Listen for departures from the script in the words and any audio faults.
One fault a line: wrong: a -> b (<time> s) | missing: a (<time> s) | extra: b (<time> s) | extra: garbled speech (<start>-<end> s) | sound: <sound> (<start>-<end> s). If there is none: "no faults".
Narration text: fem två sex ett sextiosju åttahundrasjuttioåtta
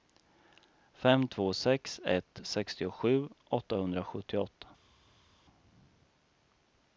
no faults